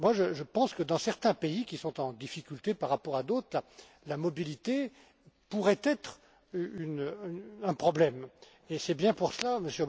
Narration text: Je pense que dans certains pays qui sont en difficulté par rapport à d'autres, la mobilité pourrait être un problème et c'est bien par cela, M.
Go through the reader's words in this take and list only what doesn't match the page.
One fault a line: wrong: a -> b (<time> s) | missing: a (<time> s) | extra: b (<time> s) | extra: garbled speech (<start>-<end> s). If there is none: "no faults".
wrong: par -> pour (9.1 s)